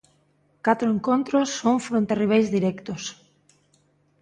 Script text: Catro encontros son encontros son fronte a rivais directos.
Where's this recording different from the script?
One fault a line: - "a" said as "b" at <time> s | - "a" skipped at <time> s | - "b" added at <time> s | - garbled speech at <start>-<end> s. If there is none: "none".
- "encontros son" skipped at 1.8 s